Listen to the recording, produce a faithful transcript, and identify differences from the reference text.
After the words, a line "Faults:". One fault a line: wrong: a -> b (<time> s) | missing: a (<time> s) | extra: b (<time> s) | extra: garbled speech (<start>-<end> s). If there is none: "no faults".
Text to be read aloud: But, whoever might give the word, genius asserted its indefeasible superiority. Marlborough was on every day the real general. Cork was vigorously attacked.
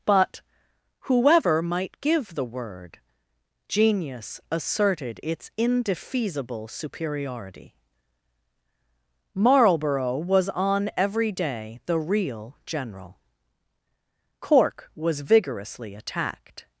But, whoever might give the word, genius asserted its indefeasible superiority. Marlborough was on every day the real general. Cork was vigorously attacked.
Faults:
no faults